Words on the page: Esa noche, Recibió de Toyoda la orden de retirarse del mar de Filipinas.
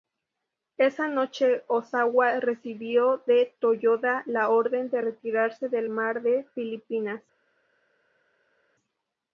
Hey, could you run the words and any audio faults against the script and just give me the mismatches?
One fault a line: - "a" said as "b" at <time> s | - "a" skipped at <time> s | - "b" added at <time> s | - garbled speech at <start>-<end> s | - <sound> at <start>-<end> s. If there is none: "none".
- "Ozawa" added at 1.7 s